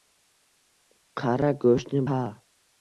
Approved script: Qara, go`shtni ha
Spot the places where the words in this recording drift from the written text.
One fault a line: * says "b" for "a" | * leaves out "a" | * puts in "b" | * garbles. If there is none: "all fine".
all fine